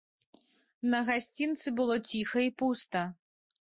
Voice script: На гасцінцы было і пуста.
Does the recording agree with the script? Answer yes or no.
no